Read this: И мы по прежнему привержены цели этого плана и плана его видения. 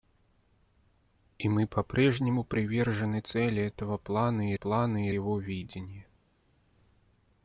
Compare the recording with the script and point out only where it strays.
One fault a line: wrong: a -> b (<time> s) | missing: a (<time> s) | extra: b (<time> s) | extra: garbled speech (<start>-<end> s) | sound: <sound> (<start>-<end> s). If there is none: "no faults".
no faults